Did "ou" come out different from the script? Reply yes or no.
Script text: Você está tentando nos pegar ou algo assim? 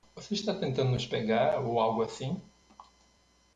no